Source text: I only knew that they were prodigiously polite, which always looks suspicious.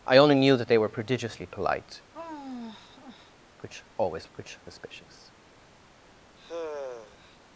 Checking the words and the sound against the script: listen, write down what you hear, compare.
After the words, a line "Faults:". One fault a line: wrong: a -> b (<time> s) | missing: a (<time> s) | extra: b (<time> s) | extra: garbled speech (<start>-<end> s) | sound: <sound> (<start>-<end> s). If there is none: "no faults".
I only knew that they were prodigiously polite, which always which suspicious.
Faults:
sound: sigh (2.1-3.3 s)
wrong: looks -> which (4.3 s)
sound: sigh (6.4-7.4 s)